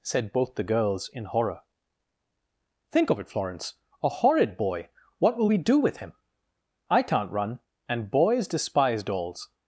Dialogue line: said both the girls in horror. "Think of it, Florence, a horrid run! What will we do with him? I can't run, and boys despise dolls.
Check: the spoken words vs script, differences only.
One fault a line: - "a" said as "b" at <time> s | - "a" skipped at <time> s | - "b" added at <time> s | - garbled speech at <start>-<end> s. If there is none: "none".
- "run" said as "boy" at 4.6 s